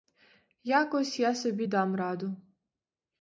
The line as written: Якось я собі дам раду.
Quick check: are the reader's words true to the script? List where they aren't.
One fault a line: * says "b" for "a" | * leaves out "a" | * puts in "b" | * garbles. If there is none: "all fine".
all fine